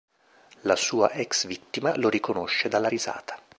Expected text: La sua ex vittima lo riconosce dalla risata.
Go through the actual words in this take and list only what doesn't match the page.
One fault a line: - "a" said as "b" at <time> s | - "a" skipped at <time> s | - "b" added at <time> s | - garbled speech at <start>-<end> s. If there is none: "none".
none